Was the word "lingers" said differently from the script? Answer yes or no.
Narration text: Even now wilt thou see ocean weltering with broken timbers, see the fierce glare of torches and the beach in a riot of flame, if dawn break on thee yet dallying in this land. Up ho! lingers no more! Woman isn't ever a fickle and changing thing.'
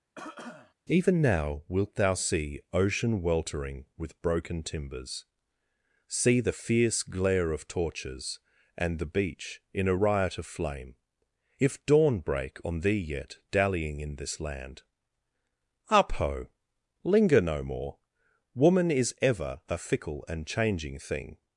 yes